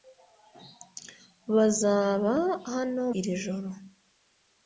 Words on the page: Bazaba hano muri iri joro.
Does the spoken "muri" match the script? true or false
false